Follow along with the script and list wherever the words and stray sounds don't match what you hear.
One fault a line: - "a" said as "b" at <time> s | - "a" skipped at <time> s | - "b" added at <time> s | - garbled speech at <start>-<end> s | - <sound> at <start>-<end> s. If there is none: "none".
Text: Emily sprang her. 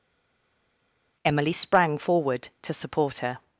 - "forward to support" added at 2.0 s